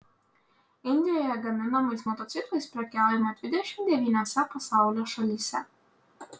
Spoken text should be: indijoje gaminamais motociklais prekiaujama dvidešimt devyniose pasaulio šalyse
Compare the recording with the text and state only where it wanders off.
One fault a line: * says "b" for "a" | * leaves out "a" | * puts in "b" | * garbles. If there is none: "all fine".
all fine